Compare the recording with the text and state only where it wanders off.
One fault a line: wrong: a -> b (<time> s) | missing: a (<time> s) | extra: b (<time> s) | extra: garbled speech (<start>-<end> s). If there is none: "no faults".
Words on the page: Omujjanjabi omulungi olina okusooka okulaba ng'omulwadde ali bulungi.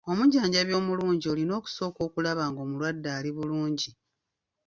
no faults